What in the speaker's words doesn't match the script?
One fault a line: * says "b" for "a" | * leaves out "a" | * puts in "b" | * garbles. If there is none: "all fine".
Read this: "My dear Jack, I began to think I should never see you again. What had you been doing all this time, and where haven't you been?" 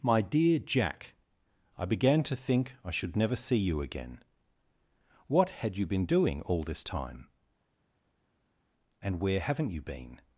all fine